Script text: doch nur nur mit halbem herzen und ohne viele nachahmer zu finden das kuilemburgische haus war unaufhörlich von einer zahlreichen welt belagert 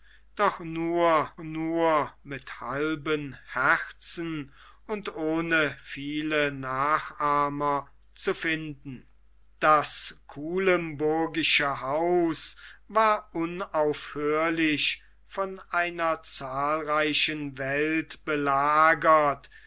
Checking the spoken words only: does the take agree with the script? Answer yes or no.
yes